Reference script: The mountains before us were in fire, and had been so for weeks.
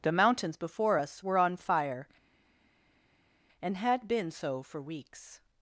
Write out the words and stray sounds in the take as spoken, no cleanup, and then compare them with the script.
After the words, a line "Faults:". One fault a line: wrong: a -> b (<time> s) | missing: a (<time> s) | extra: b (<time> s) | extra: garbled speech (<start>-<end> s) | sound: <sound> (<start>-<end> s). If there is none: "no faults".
The mountains before us were on fire, and had been so for weeks.
Faults:
wrong: in -> on (1.4 s)